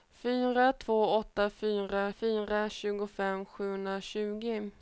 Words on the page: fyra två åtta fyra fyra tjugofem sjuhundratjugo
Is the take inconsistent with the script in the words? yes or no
no